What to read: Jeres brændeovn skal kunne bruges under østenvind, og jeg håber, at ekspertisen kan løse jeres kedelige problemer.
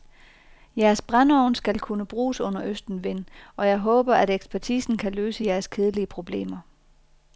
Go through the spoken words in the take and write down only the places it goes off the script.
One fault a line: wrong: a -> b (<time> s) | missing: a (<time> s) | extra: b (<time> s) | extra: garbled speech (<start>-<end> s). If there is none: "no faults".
no faults